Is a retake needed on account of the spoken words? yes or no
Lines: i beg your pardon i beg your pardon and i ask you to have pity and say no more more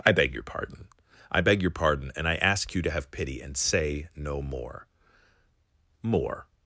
no